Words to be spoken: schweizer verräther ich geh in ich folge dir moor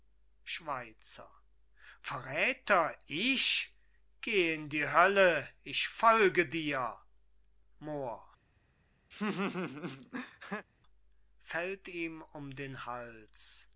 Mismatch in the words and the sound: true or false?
true